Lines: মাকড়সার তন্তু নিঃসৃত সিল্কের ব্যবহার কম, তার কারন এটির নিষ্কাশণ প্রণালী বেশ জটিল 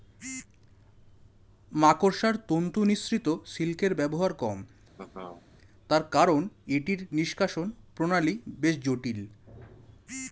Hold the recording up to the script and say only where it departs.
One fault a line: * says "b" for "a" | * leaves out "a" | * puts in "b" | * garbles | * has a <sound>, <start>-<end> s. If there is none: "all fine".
* has a laugh, 4.9-5.4 s